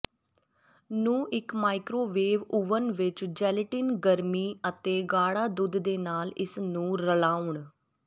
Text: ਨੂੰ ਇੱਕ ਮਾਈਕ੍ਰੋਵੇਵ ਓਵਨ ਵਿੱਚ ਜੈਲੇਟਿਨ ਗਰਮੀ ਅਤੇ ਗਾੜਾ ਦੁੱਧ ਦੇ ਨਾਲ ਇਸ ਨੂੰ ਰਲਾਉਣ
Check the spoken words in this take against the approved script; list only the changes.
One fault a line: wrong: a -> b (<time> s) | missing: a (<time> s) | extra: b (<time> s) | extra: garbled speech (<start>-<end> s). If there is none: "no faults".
no faults